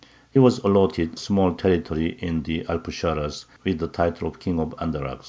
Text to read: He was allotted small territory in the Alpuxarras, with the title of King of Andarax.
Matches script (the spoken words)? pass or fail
pass